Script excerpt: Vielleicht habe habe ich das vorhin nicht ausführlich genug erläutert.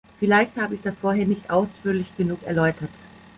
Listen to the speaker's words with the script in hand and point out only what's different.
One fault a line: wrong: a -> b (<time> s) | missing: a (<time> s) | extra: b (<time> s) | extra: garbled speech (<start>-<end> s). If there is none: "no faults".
missing: habe (0.8 s)